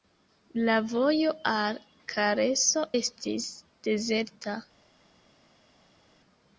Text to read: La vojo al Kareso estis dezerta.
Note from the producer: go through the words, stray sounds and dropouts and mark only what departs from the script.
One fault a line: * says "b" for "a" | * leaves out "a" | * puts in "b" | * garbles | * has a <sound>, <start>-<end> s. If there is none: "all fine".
all fine